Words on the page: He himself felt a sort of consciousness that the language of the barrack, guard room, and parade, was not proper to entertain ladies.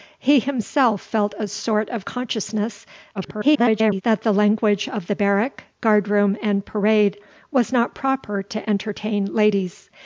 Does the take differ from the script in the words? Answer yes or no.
yes